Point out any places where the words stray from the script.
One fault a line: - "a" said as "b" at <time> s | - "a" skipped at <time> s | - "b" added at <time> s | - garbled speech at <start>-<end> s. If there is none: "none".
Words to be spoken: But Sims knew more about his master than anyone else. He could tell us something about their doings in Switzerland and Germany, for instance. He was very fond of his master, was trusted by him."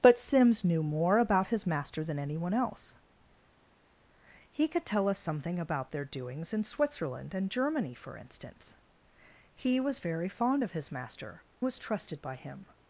none